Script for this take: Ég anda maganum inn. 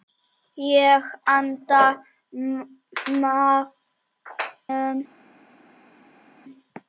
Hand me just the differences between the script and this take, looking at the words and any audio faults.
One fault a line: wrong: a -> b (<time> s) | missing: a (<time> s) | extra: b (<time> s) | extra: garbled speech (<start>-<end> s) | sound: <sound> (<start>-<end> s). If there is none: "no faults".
no faults